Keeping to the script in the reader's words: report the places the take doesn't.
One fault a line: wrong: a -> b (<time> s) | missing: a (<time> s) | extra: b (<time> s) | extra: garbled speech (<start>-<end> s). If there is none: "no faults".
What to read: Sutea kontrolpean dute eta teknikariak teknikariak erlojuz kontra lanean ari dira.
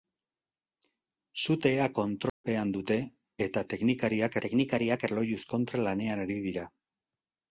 no faults